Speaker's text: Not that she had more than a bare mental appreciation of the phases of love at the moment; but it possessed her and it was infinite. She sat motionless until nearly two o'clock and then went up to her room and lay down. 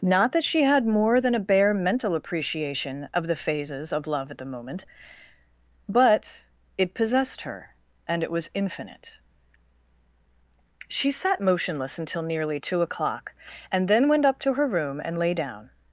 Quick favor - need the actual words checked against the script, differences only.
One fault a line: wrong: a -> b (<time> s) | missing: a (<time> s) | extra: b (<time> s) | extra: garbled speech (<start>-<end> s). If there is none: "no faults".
no faults